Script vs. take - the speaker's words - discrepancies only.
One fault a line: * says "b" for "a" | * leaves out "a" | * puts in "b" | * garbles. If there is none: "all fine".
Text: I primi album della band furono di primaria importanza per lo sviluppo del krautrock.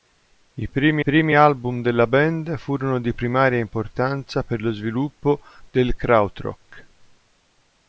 * puts in "primi"